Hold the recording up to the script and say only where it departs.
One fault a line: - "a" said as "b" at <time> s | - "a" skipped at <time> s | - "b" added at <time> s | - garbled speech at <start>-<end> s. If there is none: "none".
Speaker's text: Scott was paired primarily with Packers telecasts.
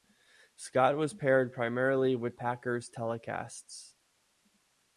none